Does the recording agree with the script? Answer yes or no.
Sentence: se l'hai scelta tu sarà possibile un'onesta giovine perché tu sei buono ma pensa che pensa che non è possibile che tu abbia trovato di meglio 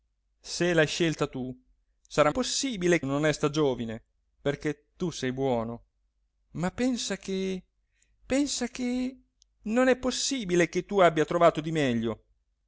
yes